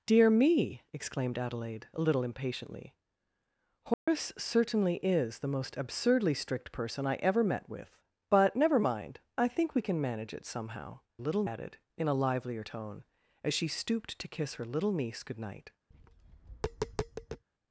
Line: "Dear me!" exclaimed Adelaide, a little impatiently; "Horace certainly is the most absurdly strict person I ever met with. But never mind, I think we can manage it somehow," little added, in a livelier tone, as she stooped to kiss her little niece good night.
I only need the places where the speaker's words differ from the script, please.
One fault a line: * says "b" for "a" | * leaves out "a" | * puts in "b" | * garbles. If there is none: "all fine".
all fine